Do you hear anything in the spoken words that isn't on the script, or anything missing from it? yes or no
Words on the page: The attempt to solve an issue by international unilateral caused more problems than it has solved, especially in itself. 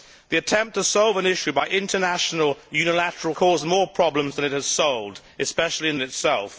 no